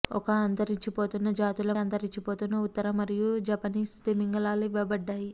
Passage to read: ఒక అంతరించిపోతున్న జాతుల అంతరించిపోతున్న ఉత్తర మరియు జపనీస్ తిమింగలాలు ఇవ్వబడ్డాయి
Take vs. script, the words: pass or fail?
pass